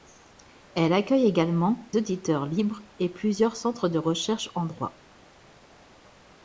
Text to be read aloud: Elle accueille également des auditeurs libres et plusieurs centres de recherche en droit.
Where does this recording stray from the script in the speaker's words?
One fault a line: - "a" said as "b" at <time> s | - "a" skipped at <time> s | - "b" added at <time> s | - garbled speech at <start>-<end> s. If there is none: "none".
- "des" skipped at 1.9 s